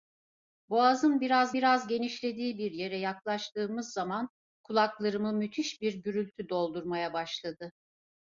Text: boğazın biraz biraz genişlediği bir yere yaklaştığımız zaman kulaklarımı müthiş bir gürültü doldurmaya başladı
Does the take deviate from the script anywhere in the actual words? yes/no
no